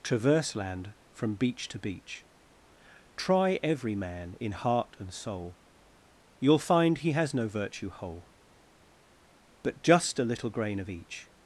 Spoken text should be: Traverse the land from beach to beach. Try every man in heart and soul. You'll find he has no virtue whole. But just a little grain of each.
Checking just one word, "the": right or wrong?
wrong